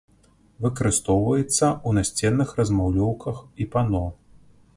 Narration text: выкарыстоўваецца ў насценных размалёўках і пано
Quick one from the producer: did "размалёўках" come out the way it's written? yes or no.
yes